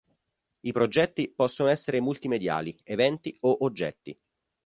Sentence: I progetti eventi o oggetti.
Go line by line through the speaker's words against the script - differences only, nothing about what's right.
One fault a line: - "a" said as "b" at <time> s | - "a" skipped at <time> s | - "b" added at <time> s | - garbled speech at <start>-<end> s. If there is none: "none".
- "possono essere multimediali" added at 1.4 s